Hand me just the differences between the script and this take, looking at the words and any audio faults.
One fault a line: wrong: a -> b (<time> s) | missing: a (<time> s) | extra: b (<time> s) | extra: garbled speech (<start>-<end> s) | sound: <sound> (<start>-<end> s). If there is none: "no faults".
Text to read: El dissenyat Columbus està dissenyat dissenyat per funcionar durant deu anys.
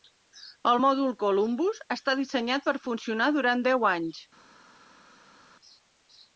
wrong: dissenyat -> mòdul (0.8 s)
missing: dissenyat (2.7 s)